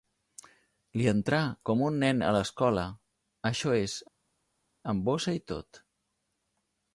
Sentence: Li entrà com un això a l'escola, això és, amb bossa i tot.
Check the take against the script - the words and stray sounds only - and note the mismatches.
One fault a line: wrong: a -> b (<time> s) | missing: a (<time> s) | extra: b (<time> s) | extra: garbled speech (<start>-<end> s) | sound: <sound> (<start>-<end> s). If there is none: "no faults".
wrong: això -> nen (2.0 s)